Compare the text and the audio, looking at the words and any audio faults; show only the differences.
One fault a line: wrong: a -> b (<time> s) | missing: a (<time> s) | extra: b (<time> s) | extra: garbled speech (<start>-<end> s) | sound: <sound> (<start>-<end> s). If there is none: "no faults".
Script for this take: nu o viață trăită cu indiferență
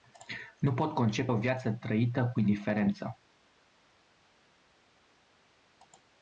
extra: pot concepe (0.7 s)